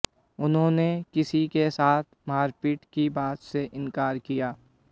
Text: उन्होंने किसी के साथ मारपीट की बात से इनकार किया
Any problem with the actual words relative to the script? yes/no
no